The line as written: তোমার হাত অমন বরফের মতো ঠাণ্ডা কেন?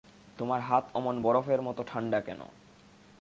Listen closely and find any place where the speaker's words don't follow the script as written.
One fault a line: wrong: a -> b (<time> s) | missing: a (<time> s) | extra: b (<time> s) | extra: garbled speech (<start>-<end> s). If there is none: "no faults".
no faults